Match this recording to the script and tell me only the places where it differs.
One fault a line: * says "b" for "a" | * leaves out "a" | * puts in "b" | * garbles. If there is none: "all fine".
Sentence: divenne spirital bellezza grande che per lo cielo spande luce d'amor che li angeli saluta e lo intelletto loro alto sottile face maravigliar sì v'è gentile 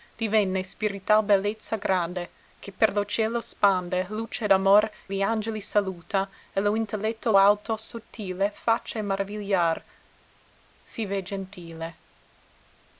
* leaves out "che"
* leaves out "loro"